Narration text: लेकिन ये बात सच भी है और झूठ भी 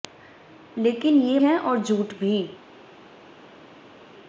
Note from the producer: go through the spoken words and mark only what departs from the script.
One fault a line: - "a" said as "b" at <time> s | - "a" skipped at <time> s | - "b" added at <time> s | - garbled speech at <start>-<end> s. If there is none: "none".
- "बात सच भी" skipped at 1.4 s